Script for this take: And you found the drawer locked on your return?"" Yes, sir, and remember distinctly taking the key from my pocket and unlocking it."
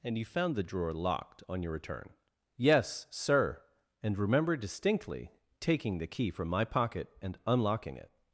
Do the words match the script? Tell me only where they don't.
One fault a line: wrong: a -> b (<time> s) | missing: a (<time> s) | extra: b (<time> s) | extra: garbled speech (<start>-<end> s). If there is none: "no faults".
no faults